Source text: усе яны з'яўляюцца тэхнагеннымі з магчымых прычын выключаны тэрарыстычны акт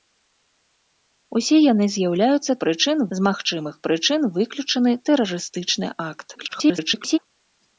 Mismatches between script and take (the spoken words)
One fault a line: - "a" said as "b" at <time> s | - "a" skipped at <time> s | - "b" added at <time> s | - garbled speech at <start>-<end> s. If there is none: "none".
- "тэхнагеннымі" said as "прычын" at 2.7 s
- garbled speech at 6.3-7.2 s